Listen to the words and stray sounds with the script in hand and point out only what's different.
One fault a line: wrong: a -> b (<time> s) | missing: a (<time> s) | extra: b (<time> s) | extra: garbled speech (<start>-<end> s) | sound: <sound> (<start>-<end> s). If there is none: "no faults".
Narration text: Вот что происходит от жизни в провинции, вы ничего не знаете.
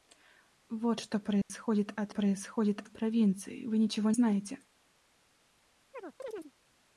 sound: dropout (1.4-1.5 s)
wrong: жизни -> происходит (2.1 s)
missing: не (4.1 s)
sound: chirp (5.9-6.5 s)